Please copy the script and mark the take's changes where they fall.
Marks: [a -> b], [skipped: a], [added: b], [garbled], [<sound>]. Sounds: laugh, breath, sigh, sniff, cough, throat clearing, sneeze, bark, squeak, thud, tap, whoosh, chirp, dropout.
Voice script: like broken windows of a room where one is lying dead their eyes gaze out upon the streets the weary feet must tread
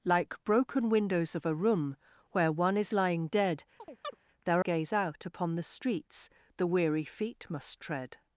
like broken windows of a room where one is lying dead [chirp] their [skipped: eyes] gaze out upon the streets the weary feet must tread